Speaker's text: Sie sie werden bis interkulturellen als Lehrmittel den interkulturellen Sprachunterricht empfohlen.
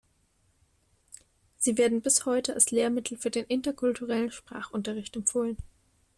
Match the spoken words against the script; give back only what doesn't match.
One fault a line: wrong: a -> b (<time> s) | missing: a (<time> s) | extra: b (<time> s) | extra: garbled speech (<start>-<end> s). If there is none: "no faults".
missing: sie (1.8 s)
wrong: interkulturellen -> heute (2.2 s)
extra: für (3.2 s)